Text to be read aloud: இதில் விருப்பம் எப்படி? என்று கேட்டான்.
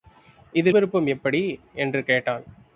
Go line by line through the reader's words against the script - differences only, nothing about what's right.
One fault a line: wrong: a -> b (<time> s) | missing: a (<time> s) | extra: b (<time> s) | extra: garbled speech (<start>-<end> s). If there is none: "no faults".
no faults